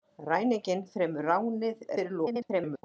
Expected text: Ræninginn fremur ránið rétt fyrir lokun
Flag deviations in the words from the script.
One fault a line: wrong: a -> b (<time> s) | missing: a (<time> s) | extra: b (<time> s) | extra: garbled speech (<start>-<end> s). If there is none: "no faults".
missing: rétt (1.9 s)
extra: garbled speech (2.2-2.8 s)